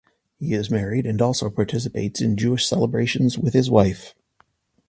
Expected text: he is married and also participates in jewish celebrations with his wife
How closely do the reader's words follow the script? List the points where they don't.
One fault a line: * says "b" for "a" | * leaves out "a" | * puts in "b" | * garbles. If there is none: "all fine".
all fine